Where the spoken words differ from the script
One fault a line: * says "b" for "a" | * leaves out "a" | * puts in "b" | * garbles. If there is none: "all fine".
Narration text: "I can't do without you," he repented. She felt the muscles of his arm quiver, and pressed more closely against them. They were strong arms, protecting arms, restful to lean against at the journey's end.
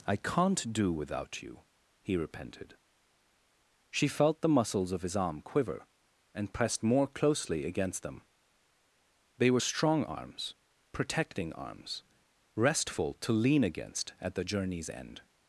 all fine